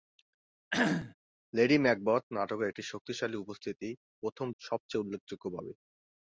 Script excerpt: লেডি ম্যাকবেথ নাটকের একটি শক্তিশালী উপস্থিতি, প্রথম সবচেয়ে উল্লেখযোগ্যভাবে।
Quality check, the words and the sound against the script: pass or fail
fail